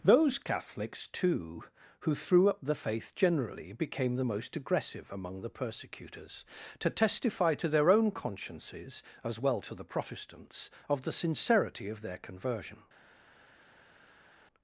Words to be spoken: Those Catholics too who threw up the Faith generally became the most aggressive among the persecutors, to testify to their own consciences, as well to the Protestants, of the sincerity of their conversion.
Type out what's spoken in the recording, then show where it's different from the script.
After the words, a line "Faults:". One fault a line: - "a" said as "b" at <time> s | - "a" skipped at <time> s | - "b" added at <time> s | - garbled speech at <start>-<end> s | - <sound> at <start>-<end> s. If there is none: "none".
Those Catholics too who threw up the Faith generally became the most aggressive among the persecutors, to testify to their own consciences, as well to the Protestants, of the sincerity of their conversion.
Faults:
none